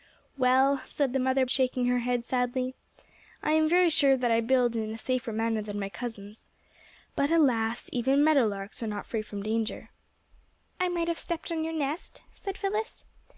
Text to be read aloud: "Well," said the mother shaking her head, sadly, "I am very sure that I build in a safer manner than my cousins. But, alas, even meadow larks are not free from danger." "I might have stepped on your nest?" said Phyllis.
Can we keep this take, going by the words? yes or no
yes